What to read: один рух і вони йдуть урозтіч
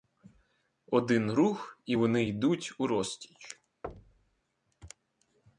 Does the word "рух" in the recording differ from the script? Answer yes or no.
no